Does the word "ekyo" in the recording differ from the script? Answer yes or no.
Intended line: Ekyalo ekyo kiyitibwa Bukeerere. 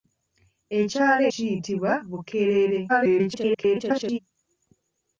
yes